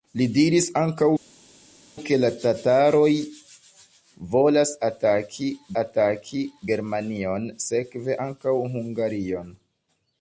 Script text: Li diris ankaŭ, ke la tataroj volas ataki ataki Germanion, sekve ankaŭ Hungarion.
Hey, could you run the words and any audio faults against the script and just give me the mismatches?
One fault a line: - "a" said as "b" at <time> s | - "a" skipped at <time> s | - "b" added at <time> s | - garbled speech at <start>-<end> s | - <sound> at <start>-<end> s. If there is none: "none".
none